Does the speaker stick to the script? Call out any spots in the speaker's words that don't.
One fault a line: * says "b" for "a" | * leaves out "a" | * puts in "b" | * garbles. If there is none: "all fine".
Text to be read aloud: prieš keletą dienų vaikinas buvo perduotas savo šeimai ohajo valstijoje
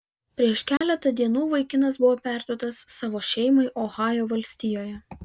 all fine